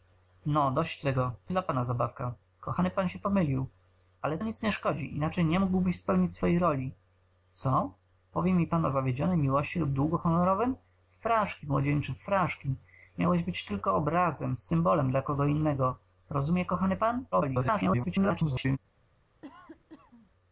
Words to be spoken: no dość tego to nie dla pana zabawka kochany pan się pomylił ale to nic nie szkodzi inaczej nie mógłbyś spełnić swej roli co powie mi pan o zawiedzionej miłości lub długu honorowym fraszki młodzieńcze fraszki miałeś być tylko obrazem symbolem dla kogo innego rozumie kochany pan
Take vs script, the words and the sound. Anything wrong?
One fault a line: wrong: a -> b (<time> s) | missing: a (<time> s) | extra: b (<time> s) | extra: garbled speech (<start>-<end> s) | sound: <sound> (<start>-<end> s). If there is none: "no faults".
missing: nie (1.5 s)
missing: to (4.4 s)
extra: garbled speech (17.3-18.8 s)
sound: cough (19.4-20.3 s)